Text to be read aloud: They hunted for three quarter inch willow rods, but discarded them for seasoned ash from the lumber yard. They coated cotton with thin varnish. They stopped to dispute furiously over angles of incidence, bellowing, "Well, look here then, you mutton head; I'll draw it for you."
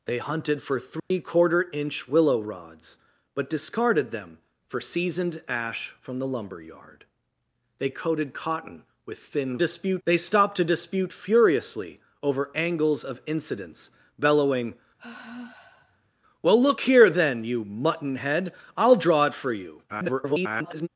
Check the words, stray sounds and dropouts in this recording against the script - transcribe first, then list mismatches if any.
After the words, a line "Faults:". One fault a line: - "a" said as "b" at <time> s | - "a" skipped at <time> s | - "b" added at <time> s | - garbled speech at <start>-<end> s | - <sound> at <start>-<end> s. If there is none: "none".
They hunted for three quarter inch willow rods, but discarded them for seasoned ash from the lumber yard. They coated cotton with thin dispute. They stopped to dispute furiously over angles of incidence, bellowing, "Well, look here then, you mutton head; I'll draw it for you." [garbled]
Faults:
- dropout at 1.0-1.1 s
- "varnish" said as "dispute" at 9.6 s
- sigh at 15.0-16.1 s
- garbled speech at 19.9-20.9 s